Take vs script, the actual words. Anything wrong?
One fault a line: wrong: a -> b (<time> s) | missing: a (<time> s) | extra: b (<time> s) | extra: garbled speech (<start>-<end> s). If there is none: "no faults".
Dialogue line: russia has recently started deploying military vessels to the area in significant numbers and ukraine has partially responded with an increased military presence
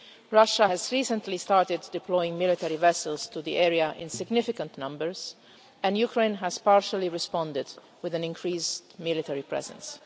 no faults